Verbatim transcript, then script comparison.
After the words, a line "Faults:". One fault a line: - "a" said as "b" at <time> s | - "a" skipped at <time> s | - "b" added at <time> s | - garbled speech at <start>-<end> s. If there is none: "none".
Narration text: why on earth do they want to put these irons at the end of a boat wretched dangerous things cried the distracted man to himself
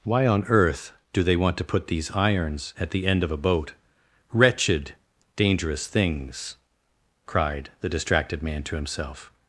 why on earth do they want to put these irons at the end of a boat wretched dangerous things cried the distracted man to himself
Faults:
none